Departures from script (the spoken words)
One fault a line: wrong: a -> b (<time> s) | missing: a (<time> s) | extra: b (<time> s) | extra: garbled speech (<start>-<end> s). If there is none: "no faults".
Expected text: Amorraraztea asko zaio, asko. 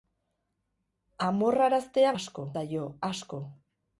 no faults